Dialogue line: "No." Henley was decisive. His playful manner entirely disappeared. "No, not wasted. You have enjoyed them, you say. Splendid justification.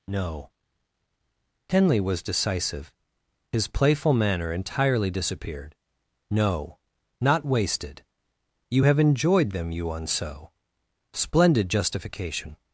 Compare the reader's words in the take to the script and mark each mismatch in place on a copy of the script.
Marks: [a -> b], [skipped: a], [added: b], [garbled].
"No." Henley was decisive. His playful manner entirely disappeared. "No, not wasted. You have enjoyed them, you [say. -> unso] Splendid justification.